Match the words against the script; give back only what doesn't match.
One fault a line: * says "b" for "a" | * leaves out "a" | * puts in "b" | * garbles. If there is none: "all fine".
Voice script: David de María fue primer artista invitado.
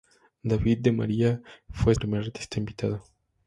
all fine